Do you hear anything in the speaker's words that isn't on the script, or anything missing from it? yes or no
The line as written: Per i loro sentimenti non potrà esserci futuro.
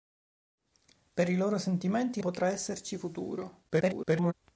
yes